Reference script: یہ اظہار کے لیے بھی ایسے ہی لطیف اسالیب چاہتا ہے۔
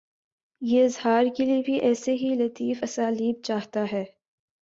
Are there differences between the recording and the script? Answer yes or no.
no